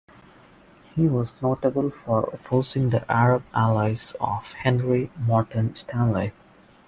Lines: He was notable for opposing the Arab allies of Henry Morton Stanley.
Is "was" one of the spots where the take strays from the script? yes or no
no